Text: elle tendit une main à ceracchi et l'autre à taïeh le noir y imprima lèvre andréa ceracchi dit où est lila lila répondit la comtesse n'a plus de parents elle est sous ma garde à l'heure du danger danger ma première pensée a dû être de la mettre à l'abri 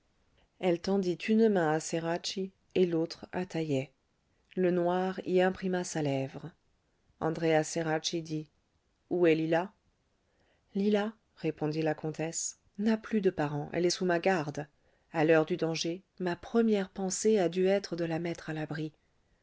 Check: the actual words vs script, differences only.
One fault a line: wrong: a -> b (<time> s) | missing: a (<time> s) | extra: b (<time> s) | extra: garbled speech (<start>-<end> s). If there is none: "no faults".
extra: sa (5.8 s)
missing: danger (16.0 s)